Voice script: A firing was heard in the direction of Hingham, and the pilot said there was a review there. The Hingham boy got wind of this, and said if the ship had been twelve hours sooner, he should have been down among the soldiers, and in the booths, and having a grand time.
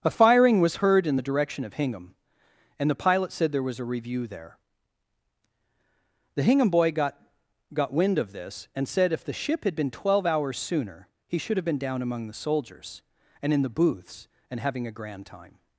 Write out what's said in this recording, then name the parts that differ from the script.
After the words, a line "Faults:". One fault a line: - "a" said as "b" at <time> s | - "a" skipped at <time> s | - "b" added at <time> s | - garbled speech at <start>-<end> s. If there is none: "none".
A firing was heard in the direction of Hingham, and the pilot said there was a review there. The Hingham boy got got wind of this, and said if the ship had been twelve hours sooner, he should have been down among the soldiers, and in the booths, and having a grand time.
Faults:
- "got" added at 7.7 s